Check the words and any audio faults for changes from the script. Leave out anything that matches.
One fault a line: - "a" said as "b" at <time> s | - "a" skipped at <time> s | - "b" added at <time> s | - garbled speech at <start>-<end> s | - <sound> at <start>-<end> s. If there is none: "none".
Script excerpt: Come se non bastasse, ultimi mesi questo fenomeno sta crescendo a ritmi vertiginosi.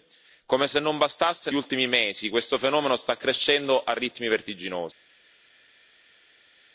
none